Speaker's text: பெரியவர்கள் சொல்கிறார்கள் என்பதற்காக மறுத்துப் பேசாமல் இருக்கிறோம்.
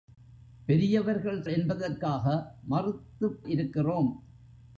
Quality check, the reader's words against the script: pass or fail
fail